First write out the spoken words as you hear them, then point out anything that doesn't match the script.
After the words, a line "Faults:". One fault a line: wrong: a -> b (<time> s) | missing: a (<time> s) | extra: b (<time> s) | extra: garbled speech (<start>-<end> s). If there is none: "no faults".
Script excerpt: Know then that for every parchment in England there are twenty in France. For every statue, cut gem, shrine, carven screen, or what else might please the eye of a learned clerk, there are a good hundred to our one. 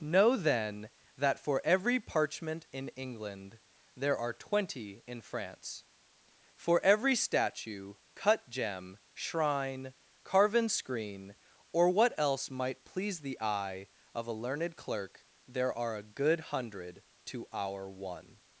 Know then that for every parchment in England there are twenty in France. For every statue, cut gem, shrine, carven screen, or what else might please the eye of a learned clerk, there are a good hundred to our one.
Faults:
no faults